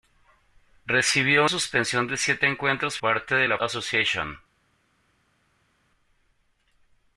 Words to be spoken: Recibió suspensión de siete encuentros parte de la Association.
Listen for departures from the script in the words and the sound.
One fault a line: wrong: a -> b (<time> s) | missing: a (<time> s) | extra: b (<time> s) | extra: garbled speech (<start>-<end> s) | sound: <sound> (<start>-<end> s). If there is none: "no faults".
no faults